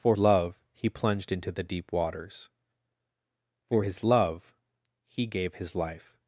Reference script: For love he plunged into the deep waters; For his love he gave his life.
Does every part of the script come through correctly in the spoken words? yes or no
yes